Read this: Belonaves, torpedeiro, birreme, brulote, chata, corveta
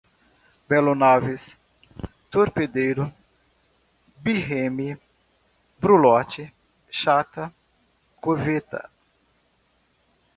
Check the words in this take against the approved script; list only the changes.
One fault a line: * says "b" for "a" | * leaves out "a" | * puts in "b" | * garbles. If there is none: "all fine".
all fine